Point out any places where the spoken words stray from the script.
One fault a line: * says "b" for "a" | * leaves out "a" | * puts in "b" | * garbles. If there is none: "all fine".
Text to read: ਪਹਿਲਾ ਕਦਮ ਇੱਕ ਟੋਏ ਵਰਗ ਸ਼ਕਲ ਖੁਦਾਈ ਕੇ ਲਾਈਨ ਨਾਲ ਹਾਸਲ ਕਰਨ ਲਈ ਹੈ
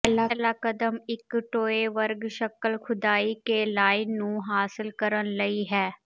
* says "ਨੂੰ" for "ਨਾਲ"